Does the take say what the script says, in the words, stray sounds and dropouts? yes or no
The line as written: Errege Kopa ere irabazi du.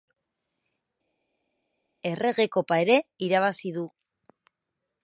yes